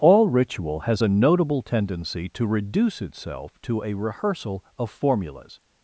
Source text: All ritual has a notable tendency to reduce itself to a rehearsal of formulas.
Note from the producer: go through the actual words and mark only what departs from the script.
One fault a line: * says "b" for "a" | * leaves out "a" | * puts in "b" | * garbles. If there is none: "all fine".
all fine